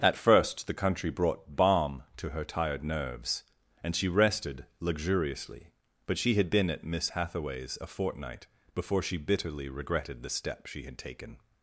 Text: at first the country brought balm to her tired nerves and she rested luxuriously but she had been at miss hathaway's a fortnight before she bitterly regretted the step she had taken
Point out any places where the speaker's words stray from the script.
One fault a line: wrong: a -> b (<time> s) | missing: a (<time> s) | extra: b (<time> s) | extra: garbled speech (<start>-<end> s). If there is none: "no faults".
no faults